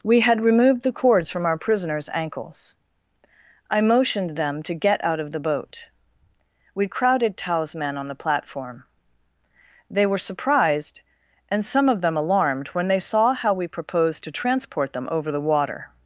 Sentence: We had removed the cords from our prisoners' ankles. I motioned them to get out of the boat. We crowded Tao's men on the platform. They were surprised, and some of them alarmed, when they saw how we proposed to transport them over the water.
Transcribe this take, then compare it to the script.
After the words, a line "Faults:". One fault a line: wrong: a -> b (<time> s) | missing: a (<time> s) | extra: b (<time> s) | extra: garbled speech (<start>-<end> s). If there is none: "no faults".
We had removed the cords from our prisoners' ankles. I motioned them to get out of the boat. We crowded Tao's men on the platform. They were surprised, and some of them alarmed, when they saw how we proposed to transport them over the water.
Faults:
no faults